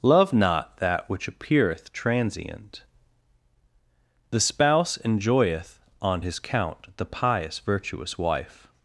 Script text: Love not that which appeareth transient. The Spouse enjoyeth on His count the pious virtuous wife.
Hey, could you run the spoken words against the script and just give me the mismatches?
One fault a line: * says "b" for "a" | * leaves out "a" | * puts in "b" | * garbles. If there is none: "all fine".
all fine